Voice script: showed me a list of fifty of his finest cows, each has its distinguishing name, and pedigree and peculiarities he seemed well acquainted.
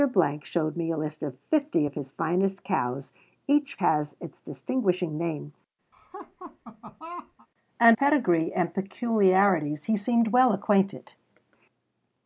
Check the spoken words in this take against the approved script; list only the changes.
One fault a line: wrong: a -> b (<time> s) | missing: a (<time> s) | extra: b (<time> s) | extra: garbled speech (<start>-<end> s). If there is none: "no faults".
no faults